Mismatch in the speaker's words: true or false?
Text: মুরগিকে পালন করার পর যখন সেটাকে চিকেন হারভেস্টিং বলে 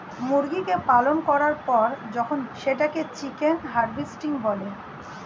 false